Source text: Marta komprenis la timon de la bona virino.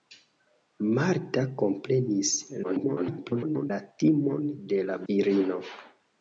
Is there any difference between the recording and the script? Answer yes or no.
yes